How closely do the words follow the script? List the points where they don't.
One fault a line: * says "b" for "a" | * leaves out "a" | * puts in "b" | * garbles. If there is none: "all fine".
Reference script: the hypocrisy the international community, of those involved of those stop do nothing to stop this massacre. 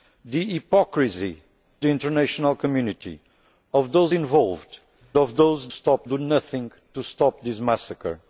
all fine